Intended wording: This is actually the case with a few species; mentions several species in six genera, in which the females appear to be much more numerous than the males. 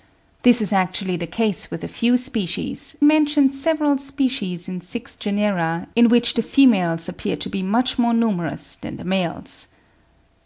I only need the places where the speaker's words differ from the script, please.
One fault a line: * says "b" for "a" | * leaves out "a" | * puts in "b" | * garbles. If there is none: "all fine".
all fine